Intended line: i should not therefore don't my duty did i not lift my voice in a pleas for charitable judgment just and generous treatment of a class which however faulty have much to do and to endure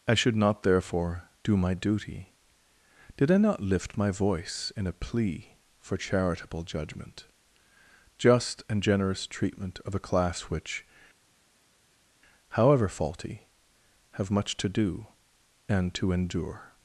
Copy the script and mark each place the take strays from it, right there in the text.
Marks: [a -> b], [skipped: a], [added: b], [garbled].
i should not therefore [don't -> do] my duty did i not lift my voice in a [pleas -> plea] for charitable judgment just and generous treatment of a class which however faulty have much to do and to endure